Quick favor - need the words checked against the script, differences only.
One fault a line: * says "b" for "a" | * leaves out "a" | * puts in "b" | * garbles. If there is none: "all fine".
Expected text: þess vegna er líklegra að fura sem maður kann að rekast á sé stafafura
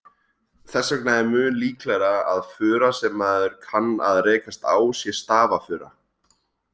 * puts in "mun"